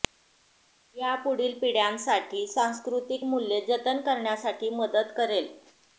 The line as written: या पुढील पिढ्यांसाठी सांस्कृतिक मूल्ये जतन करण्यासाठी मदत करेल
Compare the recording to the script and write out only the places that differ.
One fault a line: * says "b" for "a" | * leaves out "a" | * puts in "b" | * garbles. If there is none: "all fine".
all fine